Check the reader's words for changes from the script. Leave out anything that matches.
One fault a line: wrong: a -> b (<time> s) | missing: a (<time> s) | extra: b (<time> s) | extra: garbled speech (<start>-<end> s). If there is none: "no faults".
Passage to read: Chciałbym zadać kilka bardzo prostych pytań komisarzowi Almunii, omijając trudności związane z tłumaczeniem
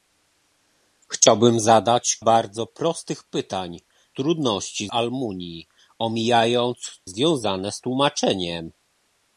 missing: kilka (2.2 s)
wrong: komisarzowi -> trudności (4.1 s)
missing: trudności (7.0 s)